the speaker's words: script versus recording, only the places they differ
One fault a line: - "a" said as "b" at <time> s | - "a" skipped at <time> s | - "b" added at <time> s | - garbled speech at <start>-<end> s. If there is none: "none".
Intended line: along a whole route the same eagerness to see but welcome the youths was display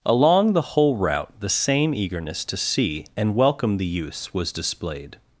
- "a" said as "the" at 0.5 s
- "but" said as "and" at 3.1 s
- "display" said as "displayed" at 4.5 s